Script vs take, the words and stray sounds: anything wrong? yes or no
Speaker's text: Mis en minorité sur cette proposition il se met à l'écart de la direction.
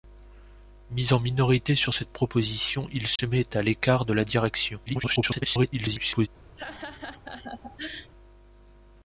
yes